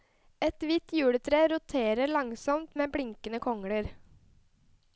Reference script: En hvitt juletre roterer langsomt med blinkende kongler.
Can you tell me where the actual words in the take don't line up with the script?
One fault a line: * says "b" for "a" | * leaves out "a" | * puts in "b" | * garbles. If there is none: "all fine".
* says "Et" for "En"